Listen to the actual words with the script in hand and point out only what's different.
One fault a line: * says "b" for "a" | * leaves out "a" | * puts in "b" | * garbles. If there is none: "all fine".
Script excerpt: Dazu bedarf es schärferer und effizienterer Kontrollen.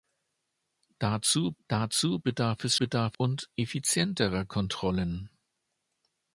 * puts in "dazu"
* says "bedarf" for "schärferer"